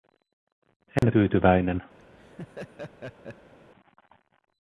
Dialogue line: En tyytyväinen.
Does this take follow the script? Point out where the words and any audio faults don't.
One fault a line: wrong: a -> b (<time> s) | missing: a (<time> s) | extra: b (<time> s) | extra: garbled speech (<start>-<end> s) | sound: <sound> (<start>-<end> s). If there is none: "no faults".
sound: dropout (1.0-1.0 s)
sound: laugh (2.0-3.5 s)